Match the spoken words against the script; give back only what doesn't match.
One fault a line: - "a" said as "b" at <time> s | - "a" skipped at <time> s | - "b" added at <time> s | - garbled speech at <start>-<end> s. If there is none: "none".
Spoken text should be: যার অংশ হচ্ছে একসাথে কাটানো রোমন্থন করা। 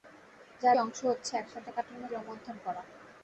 none